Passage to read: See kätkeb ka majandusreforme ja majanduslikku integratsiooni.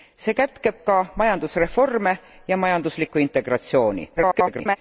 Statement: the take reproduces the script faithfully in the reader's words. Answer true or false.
false